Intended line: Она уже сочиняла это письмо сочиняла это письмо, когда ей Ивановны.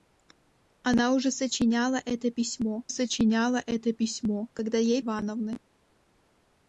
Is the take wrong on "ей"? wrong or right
right